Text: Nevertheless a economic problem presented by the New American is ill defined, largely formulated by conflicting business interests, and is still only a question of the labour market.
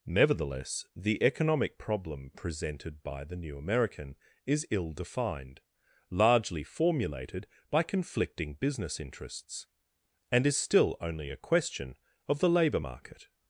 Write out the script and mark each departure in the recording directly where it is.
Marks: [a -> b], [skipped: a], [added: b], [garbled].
Nevertheless [a -> the] economic problem presented by the New American is ill defined, largely formulated by conflicting business interests, and is still only a question of the labour market.